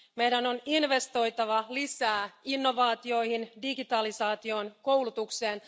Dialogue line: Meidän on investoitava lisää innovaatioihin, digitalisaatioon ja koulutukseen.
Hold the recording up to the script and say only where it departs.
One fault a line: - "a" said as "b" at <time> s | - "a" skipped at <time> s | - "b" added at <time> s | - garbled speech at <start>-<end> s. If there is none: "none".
none